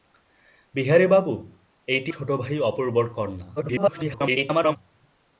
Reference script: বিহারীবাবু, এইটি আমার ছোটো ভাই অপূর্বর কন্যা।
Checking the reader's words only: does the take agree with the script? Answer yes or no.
no